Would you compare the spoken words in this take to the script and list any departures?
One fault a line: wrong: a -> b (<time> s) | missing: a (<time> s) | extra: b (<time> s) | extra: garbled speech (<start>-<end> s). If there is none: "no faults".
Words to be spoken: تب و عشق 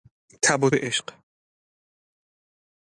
no faults